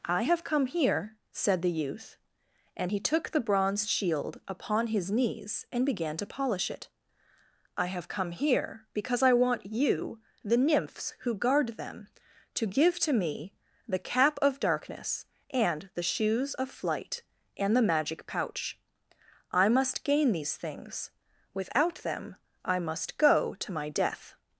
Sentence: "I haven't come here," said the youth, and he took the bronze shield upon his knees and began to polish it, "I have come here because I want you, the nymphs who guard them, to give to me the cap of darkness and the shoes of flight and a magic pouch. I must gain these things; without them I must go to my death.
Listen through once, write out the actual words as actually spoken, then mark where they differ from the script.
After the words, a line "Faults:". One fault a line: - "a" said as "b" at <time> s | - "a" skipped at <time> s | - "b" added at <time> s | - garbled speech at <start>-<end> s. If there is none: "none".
"I have come here," said the youth, and he took the bronze shield upon his knees and began to polish it, "I have come here because I want you, the nymphs who guard them, to give to me the cap of darkness and the shoes of flight and the magic pouch. I must gain these things; without them I must go to my death.
Faults:
- "haven't" said as "have" at 0.2 s
- "a" said as "the" at 17.7 s